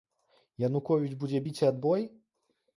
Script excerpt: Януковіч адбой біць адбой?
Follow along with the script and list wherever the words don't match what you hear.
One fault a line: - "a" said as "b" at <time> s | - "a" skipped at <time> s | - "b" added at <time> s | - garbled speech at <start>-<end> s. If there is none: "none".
- "адбой" said as "будзе" at 1.2 s